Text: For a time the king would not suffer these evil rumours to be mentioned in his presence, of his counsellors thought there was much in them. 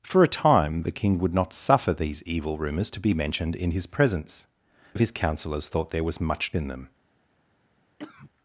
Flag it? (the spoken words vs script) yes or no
no